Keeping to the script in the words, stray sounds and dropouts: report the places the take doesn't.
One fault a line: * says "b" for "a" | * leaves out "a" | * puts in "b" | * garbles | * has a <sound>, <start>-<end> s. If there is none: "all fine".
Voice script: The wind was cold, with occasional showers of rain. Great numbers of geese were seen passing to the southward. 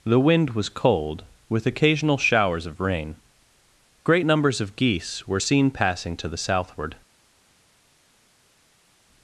all fine